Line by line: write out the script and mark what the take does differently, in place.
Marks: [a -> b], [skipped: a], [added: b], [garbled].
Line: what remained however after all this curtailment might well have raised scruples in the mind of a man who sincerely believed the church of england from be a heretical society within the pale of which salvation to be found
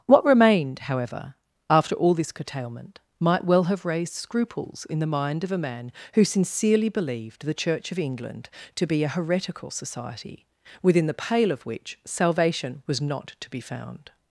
what remained however after all this curtailment might well have raised scruples in the mind of a man who sincerely believed the church of england [from -> to] be a heretical society within the pale of which salvation [added: was not] to be found